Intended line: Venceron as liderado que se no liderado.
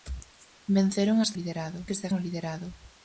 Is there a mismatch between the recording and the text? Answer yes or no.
no